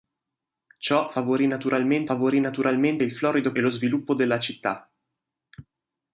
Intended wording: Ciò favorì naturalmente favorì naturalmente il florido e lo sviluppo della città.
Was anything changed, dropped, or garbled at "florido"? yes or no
no